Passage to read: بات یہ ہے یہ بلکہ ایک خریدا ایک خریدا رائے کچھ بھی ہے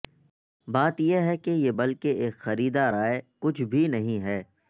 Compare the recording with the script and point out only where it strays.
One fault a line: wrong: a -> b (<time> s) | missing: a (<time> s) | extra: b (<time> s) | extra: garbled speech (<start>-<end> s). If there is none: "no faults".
extra: کہ (1.4 s)
missing: ایک خریدا (2.9 s)
extra: نہیں (3.9 s)